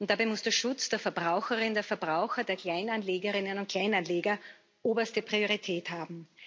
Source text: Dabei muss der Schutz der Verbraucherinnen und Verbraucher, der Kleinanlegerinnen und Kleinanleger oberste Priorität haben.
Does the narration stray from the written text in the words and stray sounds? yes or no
no